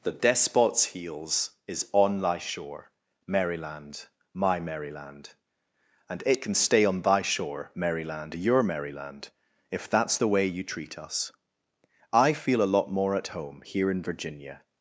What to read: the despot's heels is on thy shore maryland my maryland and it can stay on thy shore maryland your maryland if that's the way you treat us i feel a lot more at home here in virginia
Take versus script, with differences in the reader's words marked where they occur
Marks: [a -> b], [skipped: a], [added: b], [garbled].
the despot's heels is on thy shore maryland my maryland and it can stay on thy shore maryland your maryland if that's the way you treat us i feel a lot more at home here in virginia